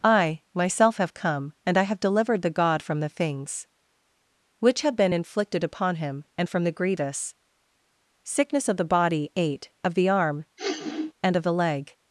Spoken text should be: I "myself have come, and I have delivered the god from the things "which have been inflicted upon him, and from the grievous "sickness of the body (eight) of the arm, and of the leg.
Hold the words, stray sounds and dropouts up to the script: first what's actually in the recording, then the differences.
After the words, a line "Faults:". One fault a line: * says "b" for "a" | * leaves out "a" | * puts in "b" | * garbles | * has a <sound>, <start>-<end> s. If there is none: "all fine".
I "myself have come, and I have delivered the god from the things "which have been inflicted upon him, and from the grievous "sickness of the body (eight) of the arm, and of the leg.
Faults:
* has a sniff, 10.6-11.1 s